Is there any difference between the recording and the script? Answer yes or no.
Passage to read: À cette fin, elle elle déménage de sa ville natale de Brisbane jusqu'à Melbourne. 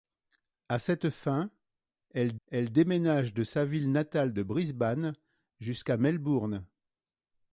no